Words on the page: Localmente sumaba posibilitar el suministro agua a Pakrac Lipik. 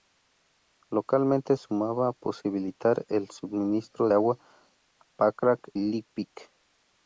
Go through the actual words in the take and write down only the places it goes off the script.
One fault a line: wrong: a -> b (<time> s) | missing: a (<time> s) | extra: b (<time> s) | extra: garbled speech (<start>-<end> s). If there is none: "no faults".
no faults